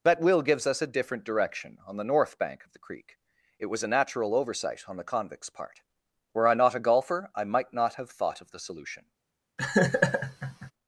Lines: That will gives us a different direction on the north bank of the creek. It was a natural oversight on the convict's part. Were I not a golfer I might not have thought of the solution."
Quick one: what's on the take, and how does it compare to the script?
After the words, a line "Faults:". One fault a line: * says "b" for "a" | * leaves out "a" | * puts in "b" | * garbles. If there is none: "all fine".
That will gives us a different direction on the north bank of the creek. It was a natural oversight on the convict's part. Were I not a golfer I might not have thought of the solution."
Faults:
all fine